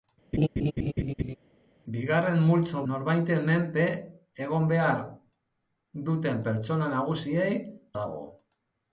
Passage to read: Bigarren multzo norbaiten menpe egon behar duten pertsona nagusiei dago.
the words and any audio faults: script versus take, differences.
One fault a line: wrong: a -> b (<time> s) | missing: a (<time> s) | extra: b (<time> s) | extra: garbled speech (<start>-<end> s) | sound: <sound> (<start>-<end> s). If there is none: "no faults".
sound: laugh (0.3-1.4 s)